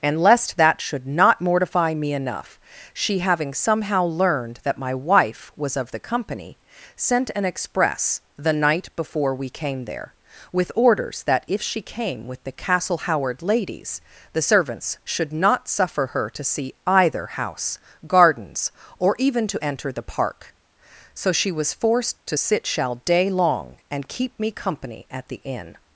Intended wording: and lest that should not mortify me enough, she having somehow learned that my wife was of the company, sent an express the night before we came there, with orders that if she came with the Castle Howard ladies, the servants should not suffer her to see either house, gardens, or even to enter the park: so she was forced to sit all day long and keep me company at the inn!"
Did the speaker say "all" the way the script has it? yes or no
no